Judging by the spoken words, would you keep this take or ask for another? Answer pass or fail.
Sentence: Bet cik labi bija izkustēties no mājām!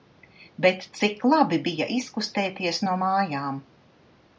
pass